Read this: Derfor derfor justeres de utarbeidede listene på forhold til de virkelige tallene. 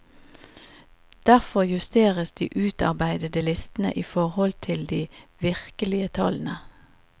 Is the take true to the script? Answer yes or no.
no